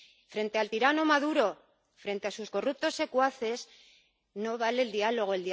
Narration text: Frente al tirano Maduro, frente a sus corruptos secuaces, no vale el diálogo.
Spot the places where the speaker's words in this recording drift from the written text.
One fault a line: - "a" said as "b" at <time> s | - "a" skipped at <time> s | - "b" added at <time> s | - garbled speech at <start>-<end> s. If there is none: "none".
none